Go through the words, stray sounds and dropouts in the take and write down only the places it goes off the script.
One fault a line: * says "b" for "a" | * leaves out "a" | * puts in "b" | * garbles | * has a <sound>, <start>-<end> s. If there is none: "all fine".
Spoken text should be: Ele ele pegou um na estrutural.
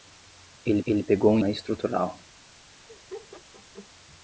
* has a laugh, 2.9-3.9 s